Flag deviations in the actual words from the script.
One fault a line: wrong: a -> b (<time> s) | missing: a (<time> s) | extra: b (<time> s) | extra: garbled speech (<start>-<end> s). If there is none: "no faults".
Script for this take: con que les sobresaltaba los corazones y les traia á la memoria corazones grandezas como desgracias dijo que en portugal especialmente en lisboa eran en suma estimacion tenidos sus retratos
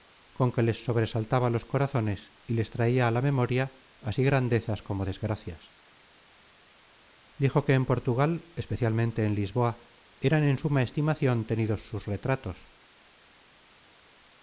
wrong: corazones -> así (4.1 s)